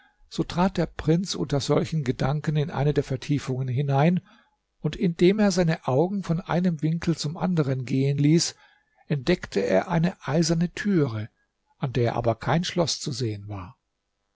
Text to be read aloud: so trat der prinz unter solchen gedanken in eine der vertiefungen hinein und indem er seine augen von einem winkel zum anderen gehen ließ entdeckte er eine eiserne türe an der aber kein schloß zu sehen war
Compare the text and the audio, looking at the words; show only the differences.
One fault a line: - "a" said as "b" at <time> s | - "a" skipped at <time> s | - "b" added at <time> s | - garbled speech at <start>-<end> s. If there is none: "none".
none